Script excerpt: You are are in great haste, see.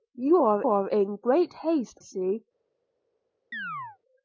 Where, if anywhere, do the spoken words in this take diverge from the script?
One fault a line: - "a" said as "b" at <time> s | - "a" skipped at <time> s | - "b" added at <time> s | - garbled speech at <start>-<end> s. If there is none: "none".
none